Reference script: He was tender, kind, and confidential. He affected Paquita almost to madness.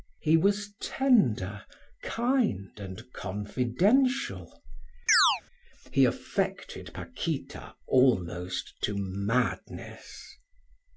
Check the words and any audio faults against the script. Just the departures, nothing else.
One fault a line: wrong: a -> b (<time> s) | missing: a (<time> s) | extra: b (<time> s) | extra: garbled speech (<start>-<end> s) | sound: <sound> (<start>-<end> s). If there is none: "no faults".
sound: chirp (5.1-5.4 s)